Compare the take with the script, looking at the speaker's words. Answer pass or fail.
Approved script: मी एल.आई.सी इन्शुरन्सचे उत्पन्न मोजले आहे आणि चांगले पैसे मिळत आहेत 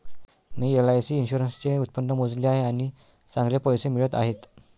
pass